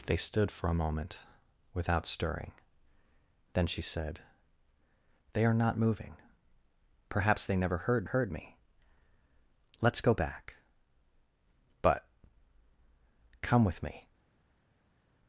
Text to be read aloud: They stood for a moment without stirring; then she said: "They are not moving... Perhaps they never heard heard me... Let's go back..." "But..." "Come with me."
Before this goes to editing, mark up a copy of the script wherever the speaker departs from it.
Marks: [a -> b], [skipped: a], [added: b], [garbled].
They stood for a moment without stirring; then she said: "They are not moving... Perhaps they never heard heard me... Let's go back..." "But..." "Come with me."